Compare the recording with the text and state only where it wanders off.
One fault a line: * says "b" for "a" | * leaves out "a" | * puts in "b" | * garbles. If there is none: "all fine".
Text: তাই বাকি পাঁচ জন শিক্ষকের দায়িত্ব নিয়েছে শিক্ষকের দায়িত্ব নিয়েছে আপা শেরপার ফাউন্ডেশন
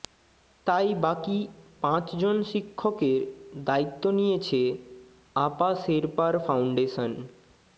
* leaves out "শিক্ষকের দায়িত্ব নিয়েছে"